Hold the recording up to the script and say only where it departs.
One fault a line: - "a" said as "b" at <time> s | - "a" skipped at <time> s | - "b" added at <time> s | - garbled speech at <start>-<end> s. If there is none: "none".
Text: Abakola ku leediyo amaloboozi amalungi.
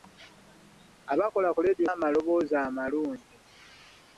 none